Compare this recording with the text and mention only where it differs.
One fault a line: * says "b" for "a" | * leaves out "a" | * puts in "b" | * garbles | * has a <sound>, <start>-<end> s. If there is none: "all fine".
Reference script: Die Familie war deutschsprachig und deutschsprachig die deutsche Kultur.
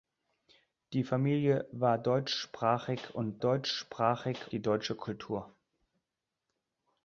all fine